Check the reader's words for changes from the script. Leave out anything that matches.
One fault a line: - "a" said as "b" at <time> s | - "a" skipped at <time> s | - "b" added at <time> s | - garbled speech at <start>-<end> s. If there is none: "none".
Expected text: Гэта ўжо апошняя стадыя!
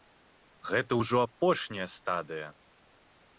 none